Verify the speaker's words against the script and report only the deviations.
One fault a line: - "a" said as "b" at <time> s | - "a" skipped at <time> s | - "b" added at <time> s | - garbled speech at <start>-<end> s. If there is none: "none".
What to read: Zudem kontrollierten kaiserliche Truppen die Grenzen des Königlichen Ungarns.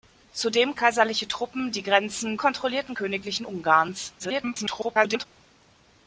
- "kontrollierten" skipped at 0.7 s
- "des" said as "kontrollierten" at 2.4 s
- garbled speech at 4.2-5.3 s